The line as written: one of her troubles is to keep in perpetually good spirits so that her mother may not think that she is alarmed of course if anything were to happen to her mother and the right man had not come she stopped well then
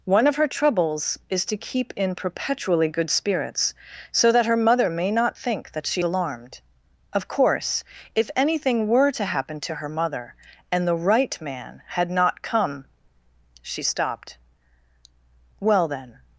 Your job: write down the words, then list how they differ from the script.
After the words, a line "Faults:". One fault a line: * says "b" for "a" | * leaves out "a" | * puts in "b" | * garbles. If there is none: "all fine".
one of her troubles is to keep in perpetually good spirits so that her mother may not think that she alarmed of course if anything were to happen to her mother and the right man had not come she stopped well then
Faults:
* leaves out "is"